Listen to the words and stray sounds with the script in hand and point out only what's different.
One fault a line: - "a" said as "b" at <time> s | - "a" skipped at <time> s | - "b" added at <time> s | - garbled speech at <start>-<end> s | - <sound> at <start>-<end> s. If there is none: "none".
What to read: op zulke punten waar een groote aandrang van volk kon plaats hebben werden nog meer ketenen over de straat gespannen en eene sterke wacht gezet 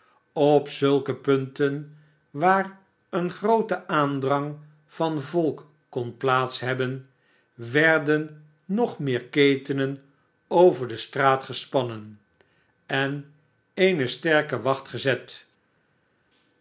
none